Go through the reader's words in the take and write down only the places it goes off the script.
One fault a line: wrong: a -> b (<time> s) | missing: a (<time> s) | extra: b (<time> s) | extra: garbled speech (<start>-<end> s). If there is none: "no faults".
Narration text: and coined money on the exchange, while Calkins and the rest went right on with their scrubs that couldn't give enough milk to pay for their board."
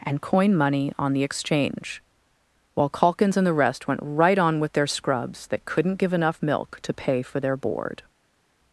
wrong: coined -> coin (0.2 s)